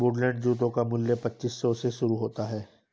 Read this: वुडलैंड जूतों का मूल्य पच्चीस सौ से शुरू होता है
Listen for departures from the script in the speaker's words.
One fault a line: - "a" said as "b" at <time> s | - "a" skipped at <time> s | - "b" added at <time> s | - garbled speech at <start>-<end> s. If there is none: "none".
none